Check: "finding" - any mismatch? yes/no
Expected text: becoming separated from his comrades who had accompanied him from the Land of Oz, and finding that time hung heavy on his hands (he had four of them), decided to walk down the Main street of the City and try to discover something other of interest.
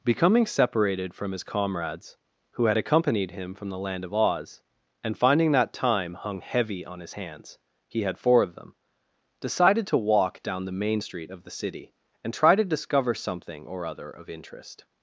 no